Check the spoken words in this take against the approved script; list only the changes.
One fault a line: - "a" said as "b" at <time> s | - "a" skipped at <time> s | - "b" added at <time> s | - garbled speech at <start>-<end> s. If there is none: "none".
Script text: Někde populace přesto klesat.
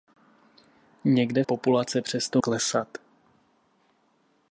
none